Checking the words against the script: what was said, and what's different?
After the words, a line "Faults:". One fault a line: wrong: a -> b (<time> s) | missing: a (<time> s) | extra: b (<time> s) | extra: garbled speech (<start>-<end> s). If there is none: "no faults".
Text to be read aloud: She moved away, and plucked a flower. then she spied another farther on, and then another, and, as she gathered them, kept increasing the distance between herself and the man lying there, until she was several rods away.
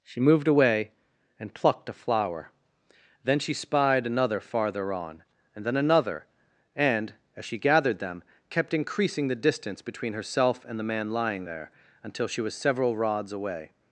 She moved away, and plucked a flower. then she spied another farther on, and then another, and, as she gathered them, kept increasing the distance between herself and the man lying there, until she was several rods away.
Faults:
no faults